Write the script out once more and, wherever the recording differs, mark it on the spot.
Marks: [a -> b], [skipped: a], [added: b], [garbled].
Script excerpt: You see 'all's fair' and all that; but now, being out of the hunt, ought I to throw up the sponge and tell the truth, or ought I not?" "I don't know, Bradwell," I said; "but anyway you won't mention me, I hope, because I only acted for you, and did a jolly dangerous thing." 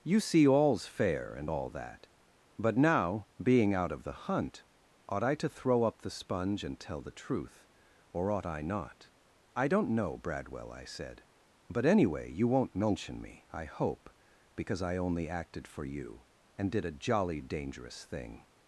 You see 'all's fair' and all that; but now, being out of the hunt, ought I to throw up the sponge and tell the truth, or ought I not?" "I don't know, Bradwell," I said; "but anyway you won't mention me, I hope, because I only acted for you, and did a jolly dangerous thing."